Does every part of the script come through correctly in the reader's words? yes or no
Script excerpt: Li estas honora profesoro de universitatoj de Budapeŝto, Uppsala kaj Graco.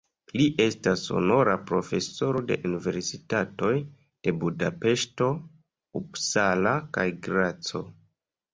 yes